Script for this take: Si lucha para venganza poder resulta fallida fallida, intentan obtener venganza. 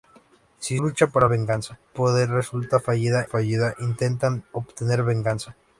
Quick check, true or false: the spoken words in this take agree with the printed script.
true